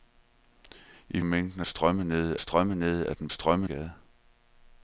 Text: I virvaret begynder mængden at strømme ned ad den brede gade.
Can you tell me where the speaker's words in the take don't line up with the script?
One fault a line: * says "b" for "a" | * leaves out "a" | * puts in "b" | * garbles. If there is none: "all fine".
* leaves out "virvaret begynder"
* puts in "strømme ned"
* says "strømme" for "brede"